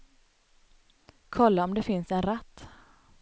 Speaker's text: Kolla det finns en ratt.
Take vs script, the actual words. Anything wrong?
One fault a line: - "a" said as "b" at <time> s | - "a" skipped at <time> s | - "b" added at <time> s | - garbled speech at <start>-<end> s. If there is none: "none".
- "om" added at 1.6 s